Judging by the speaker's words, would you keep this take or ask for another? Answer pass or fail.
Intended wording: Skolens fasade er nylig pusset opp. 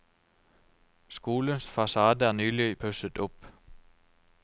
pass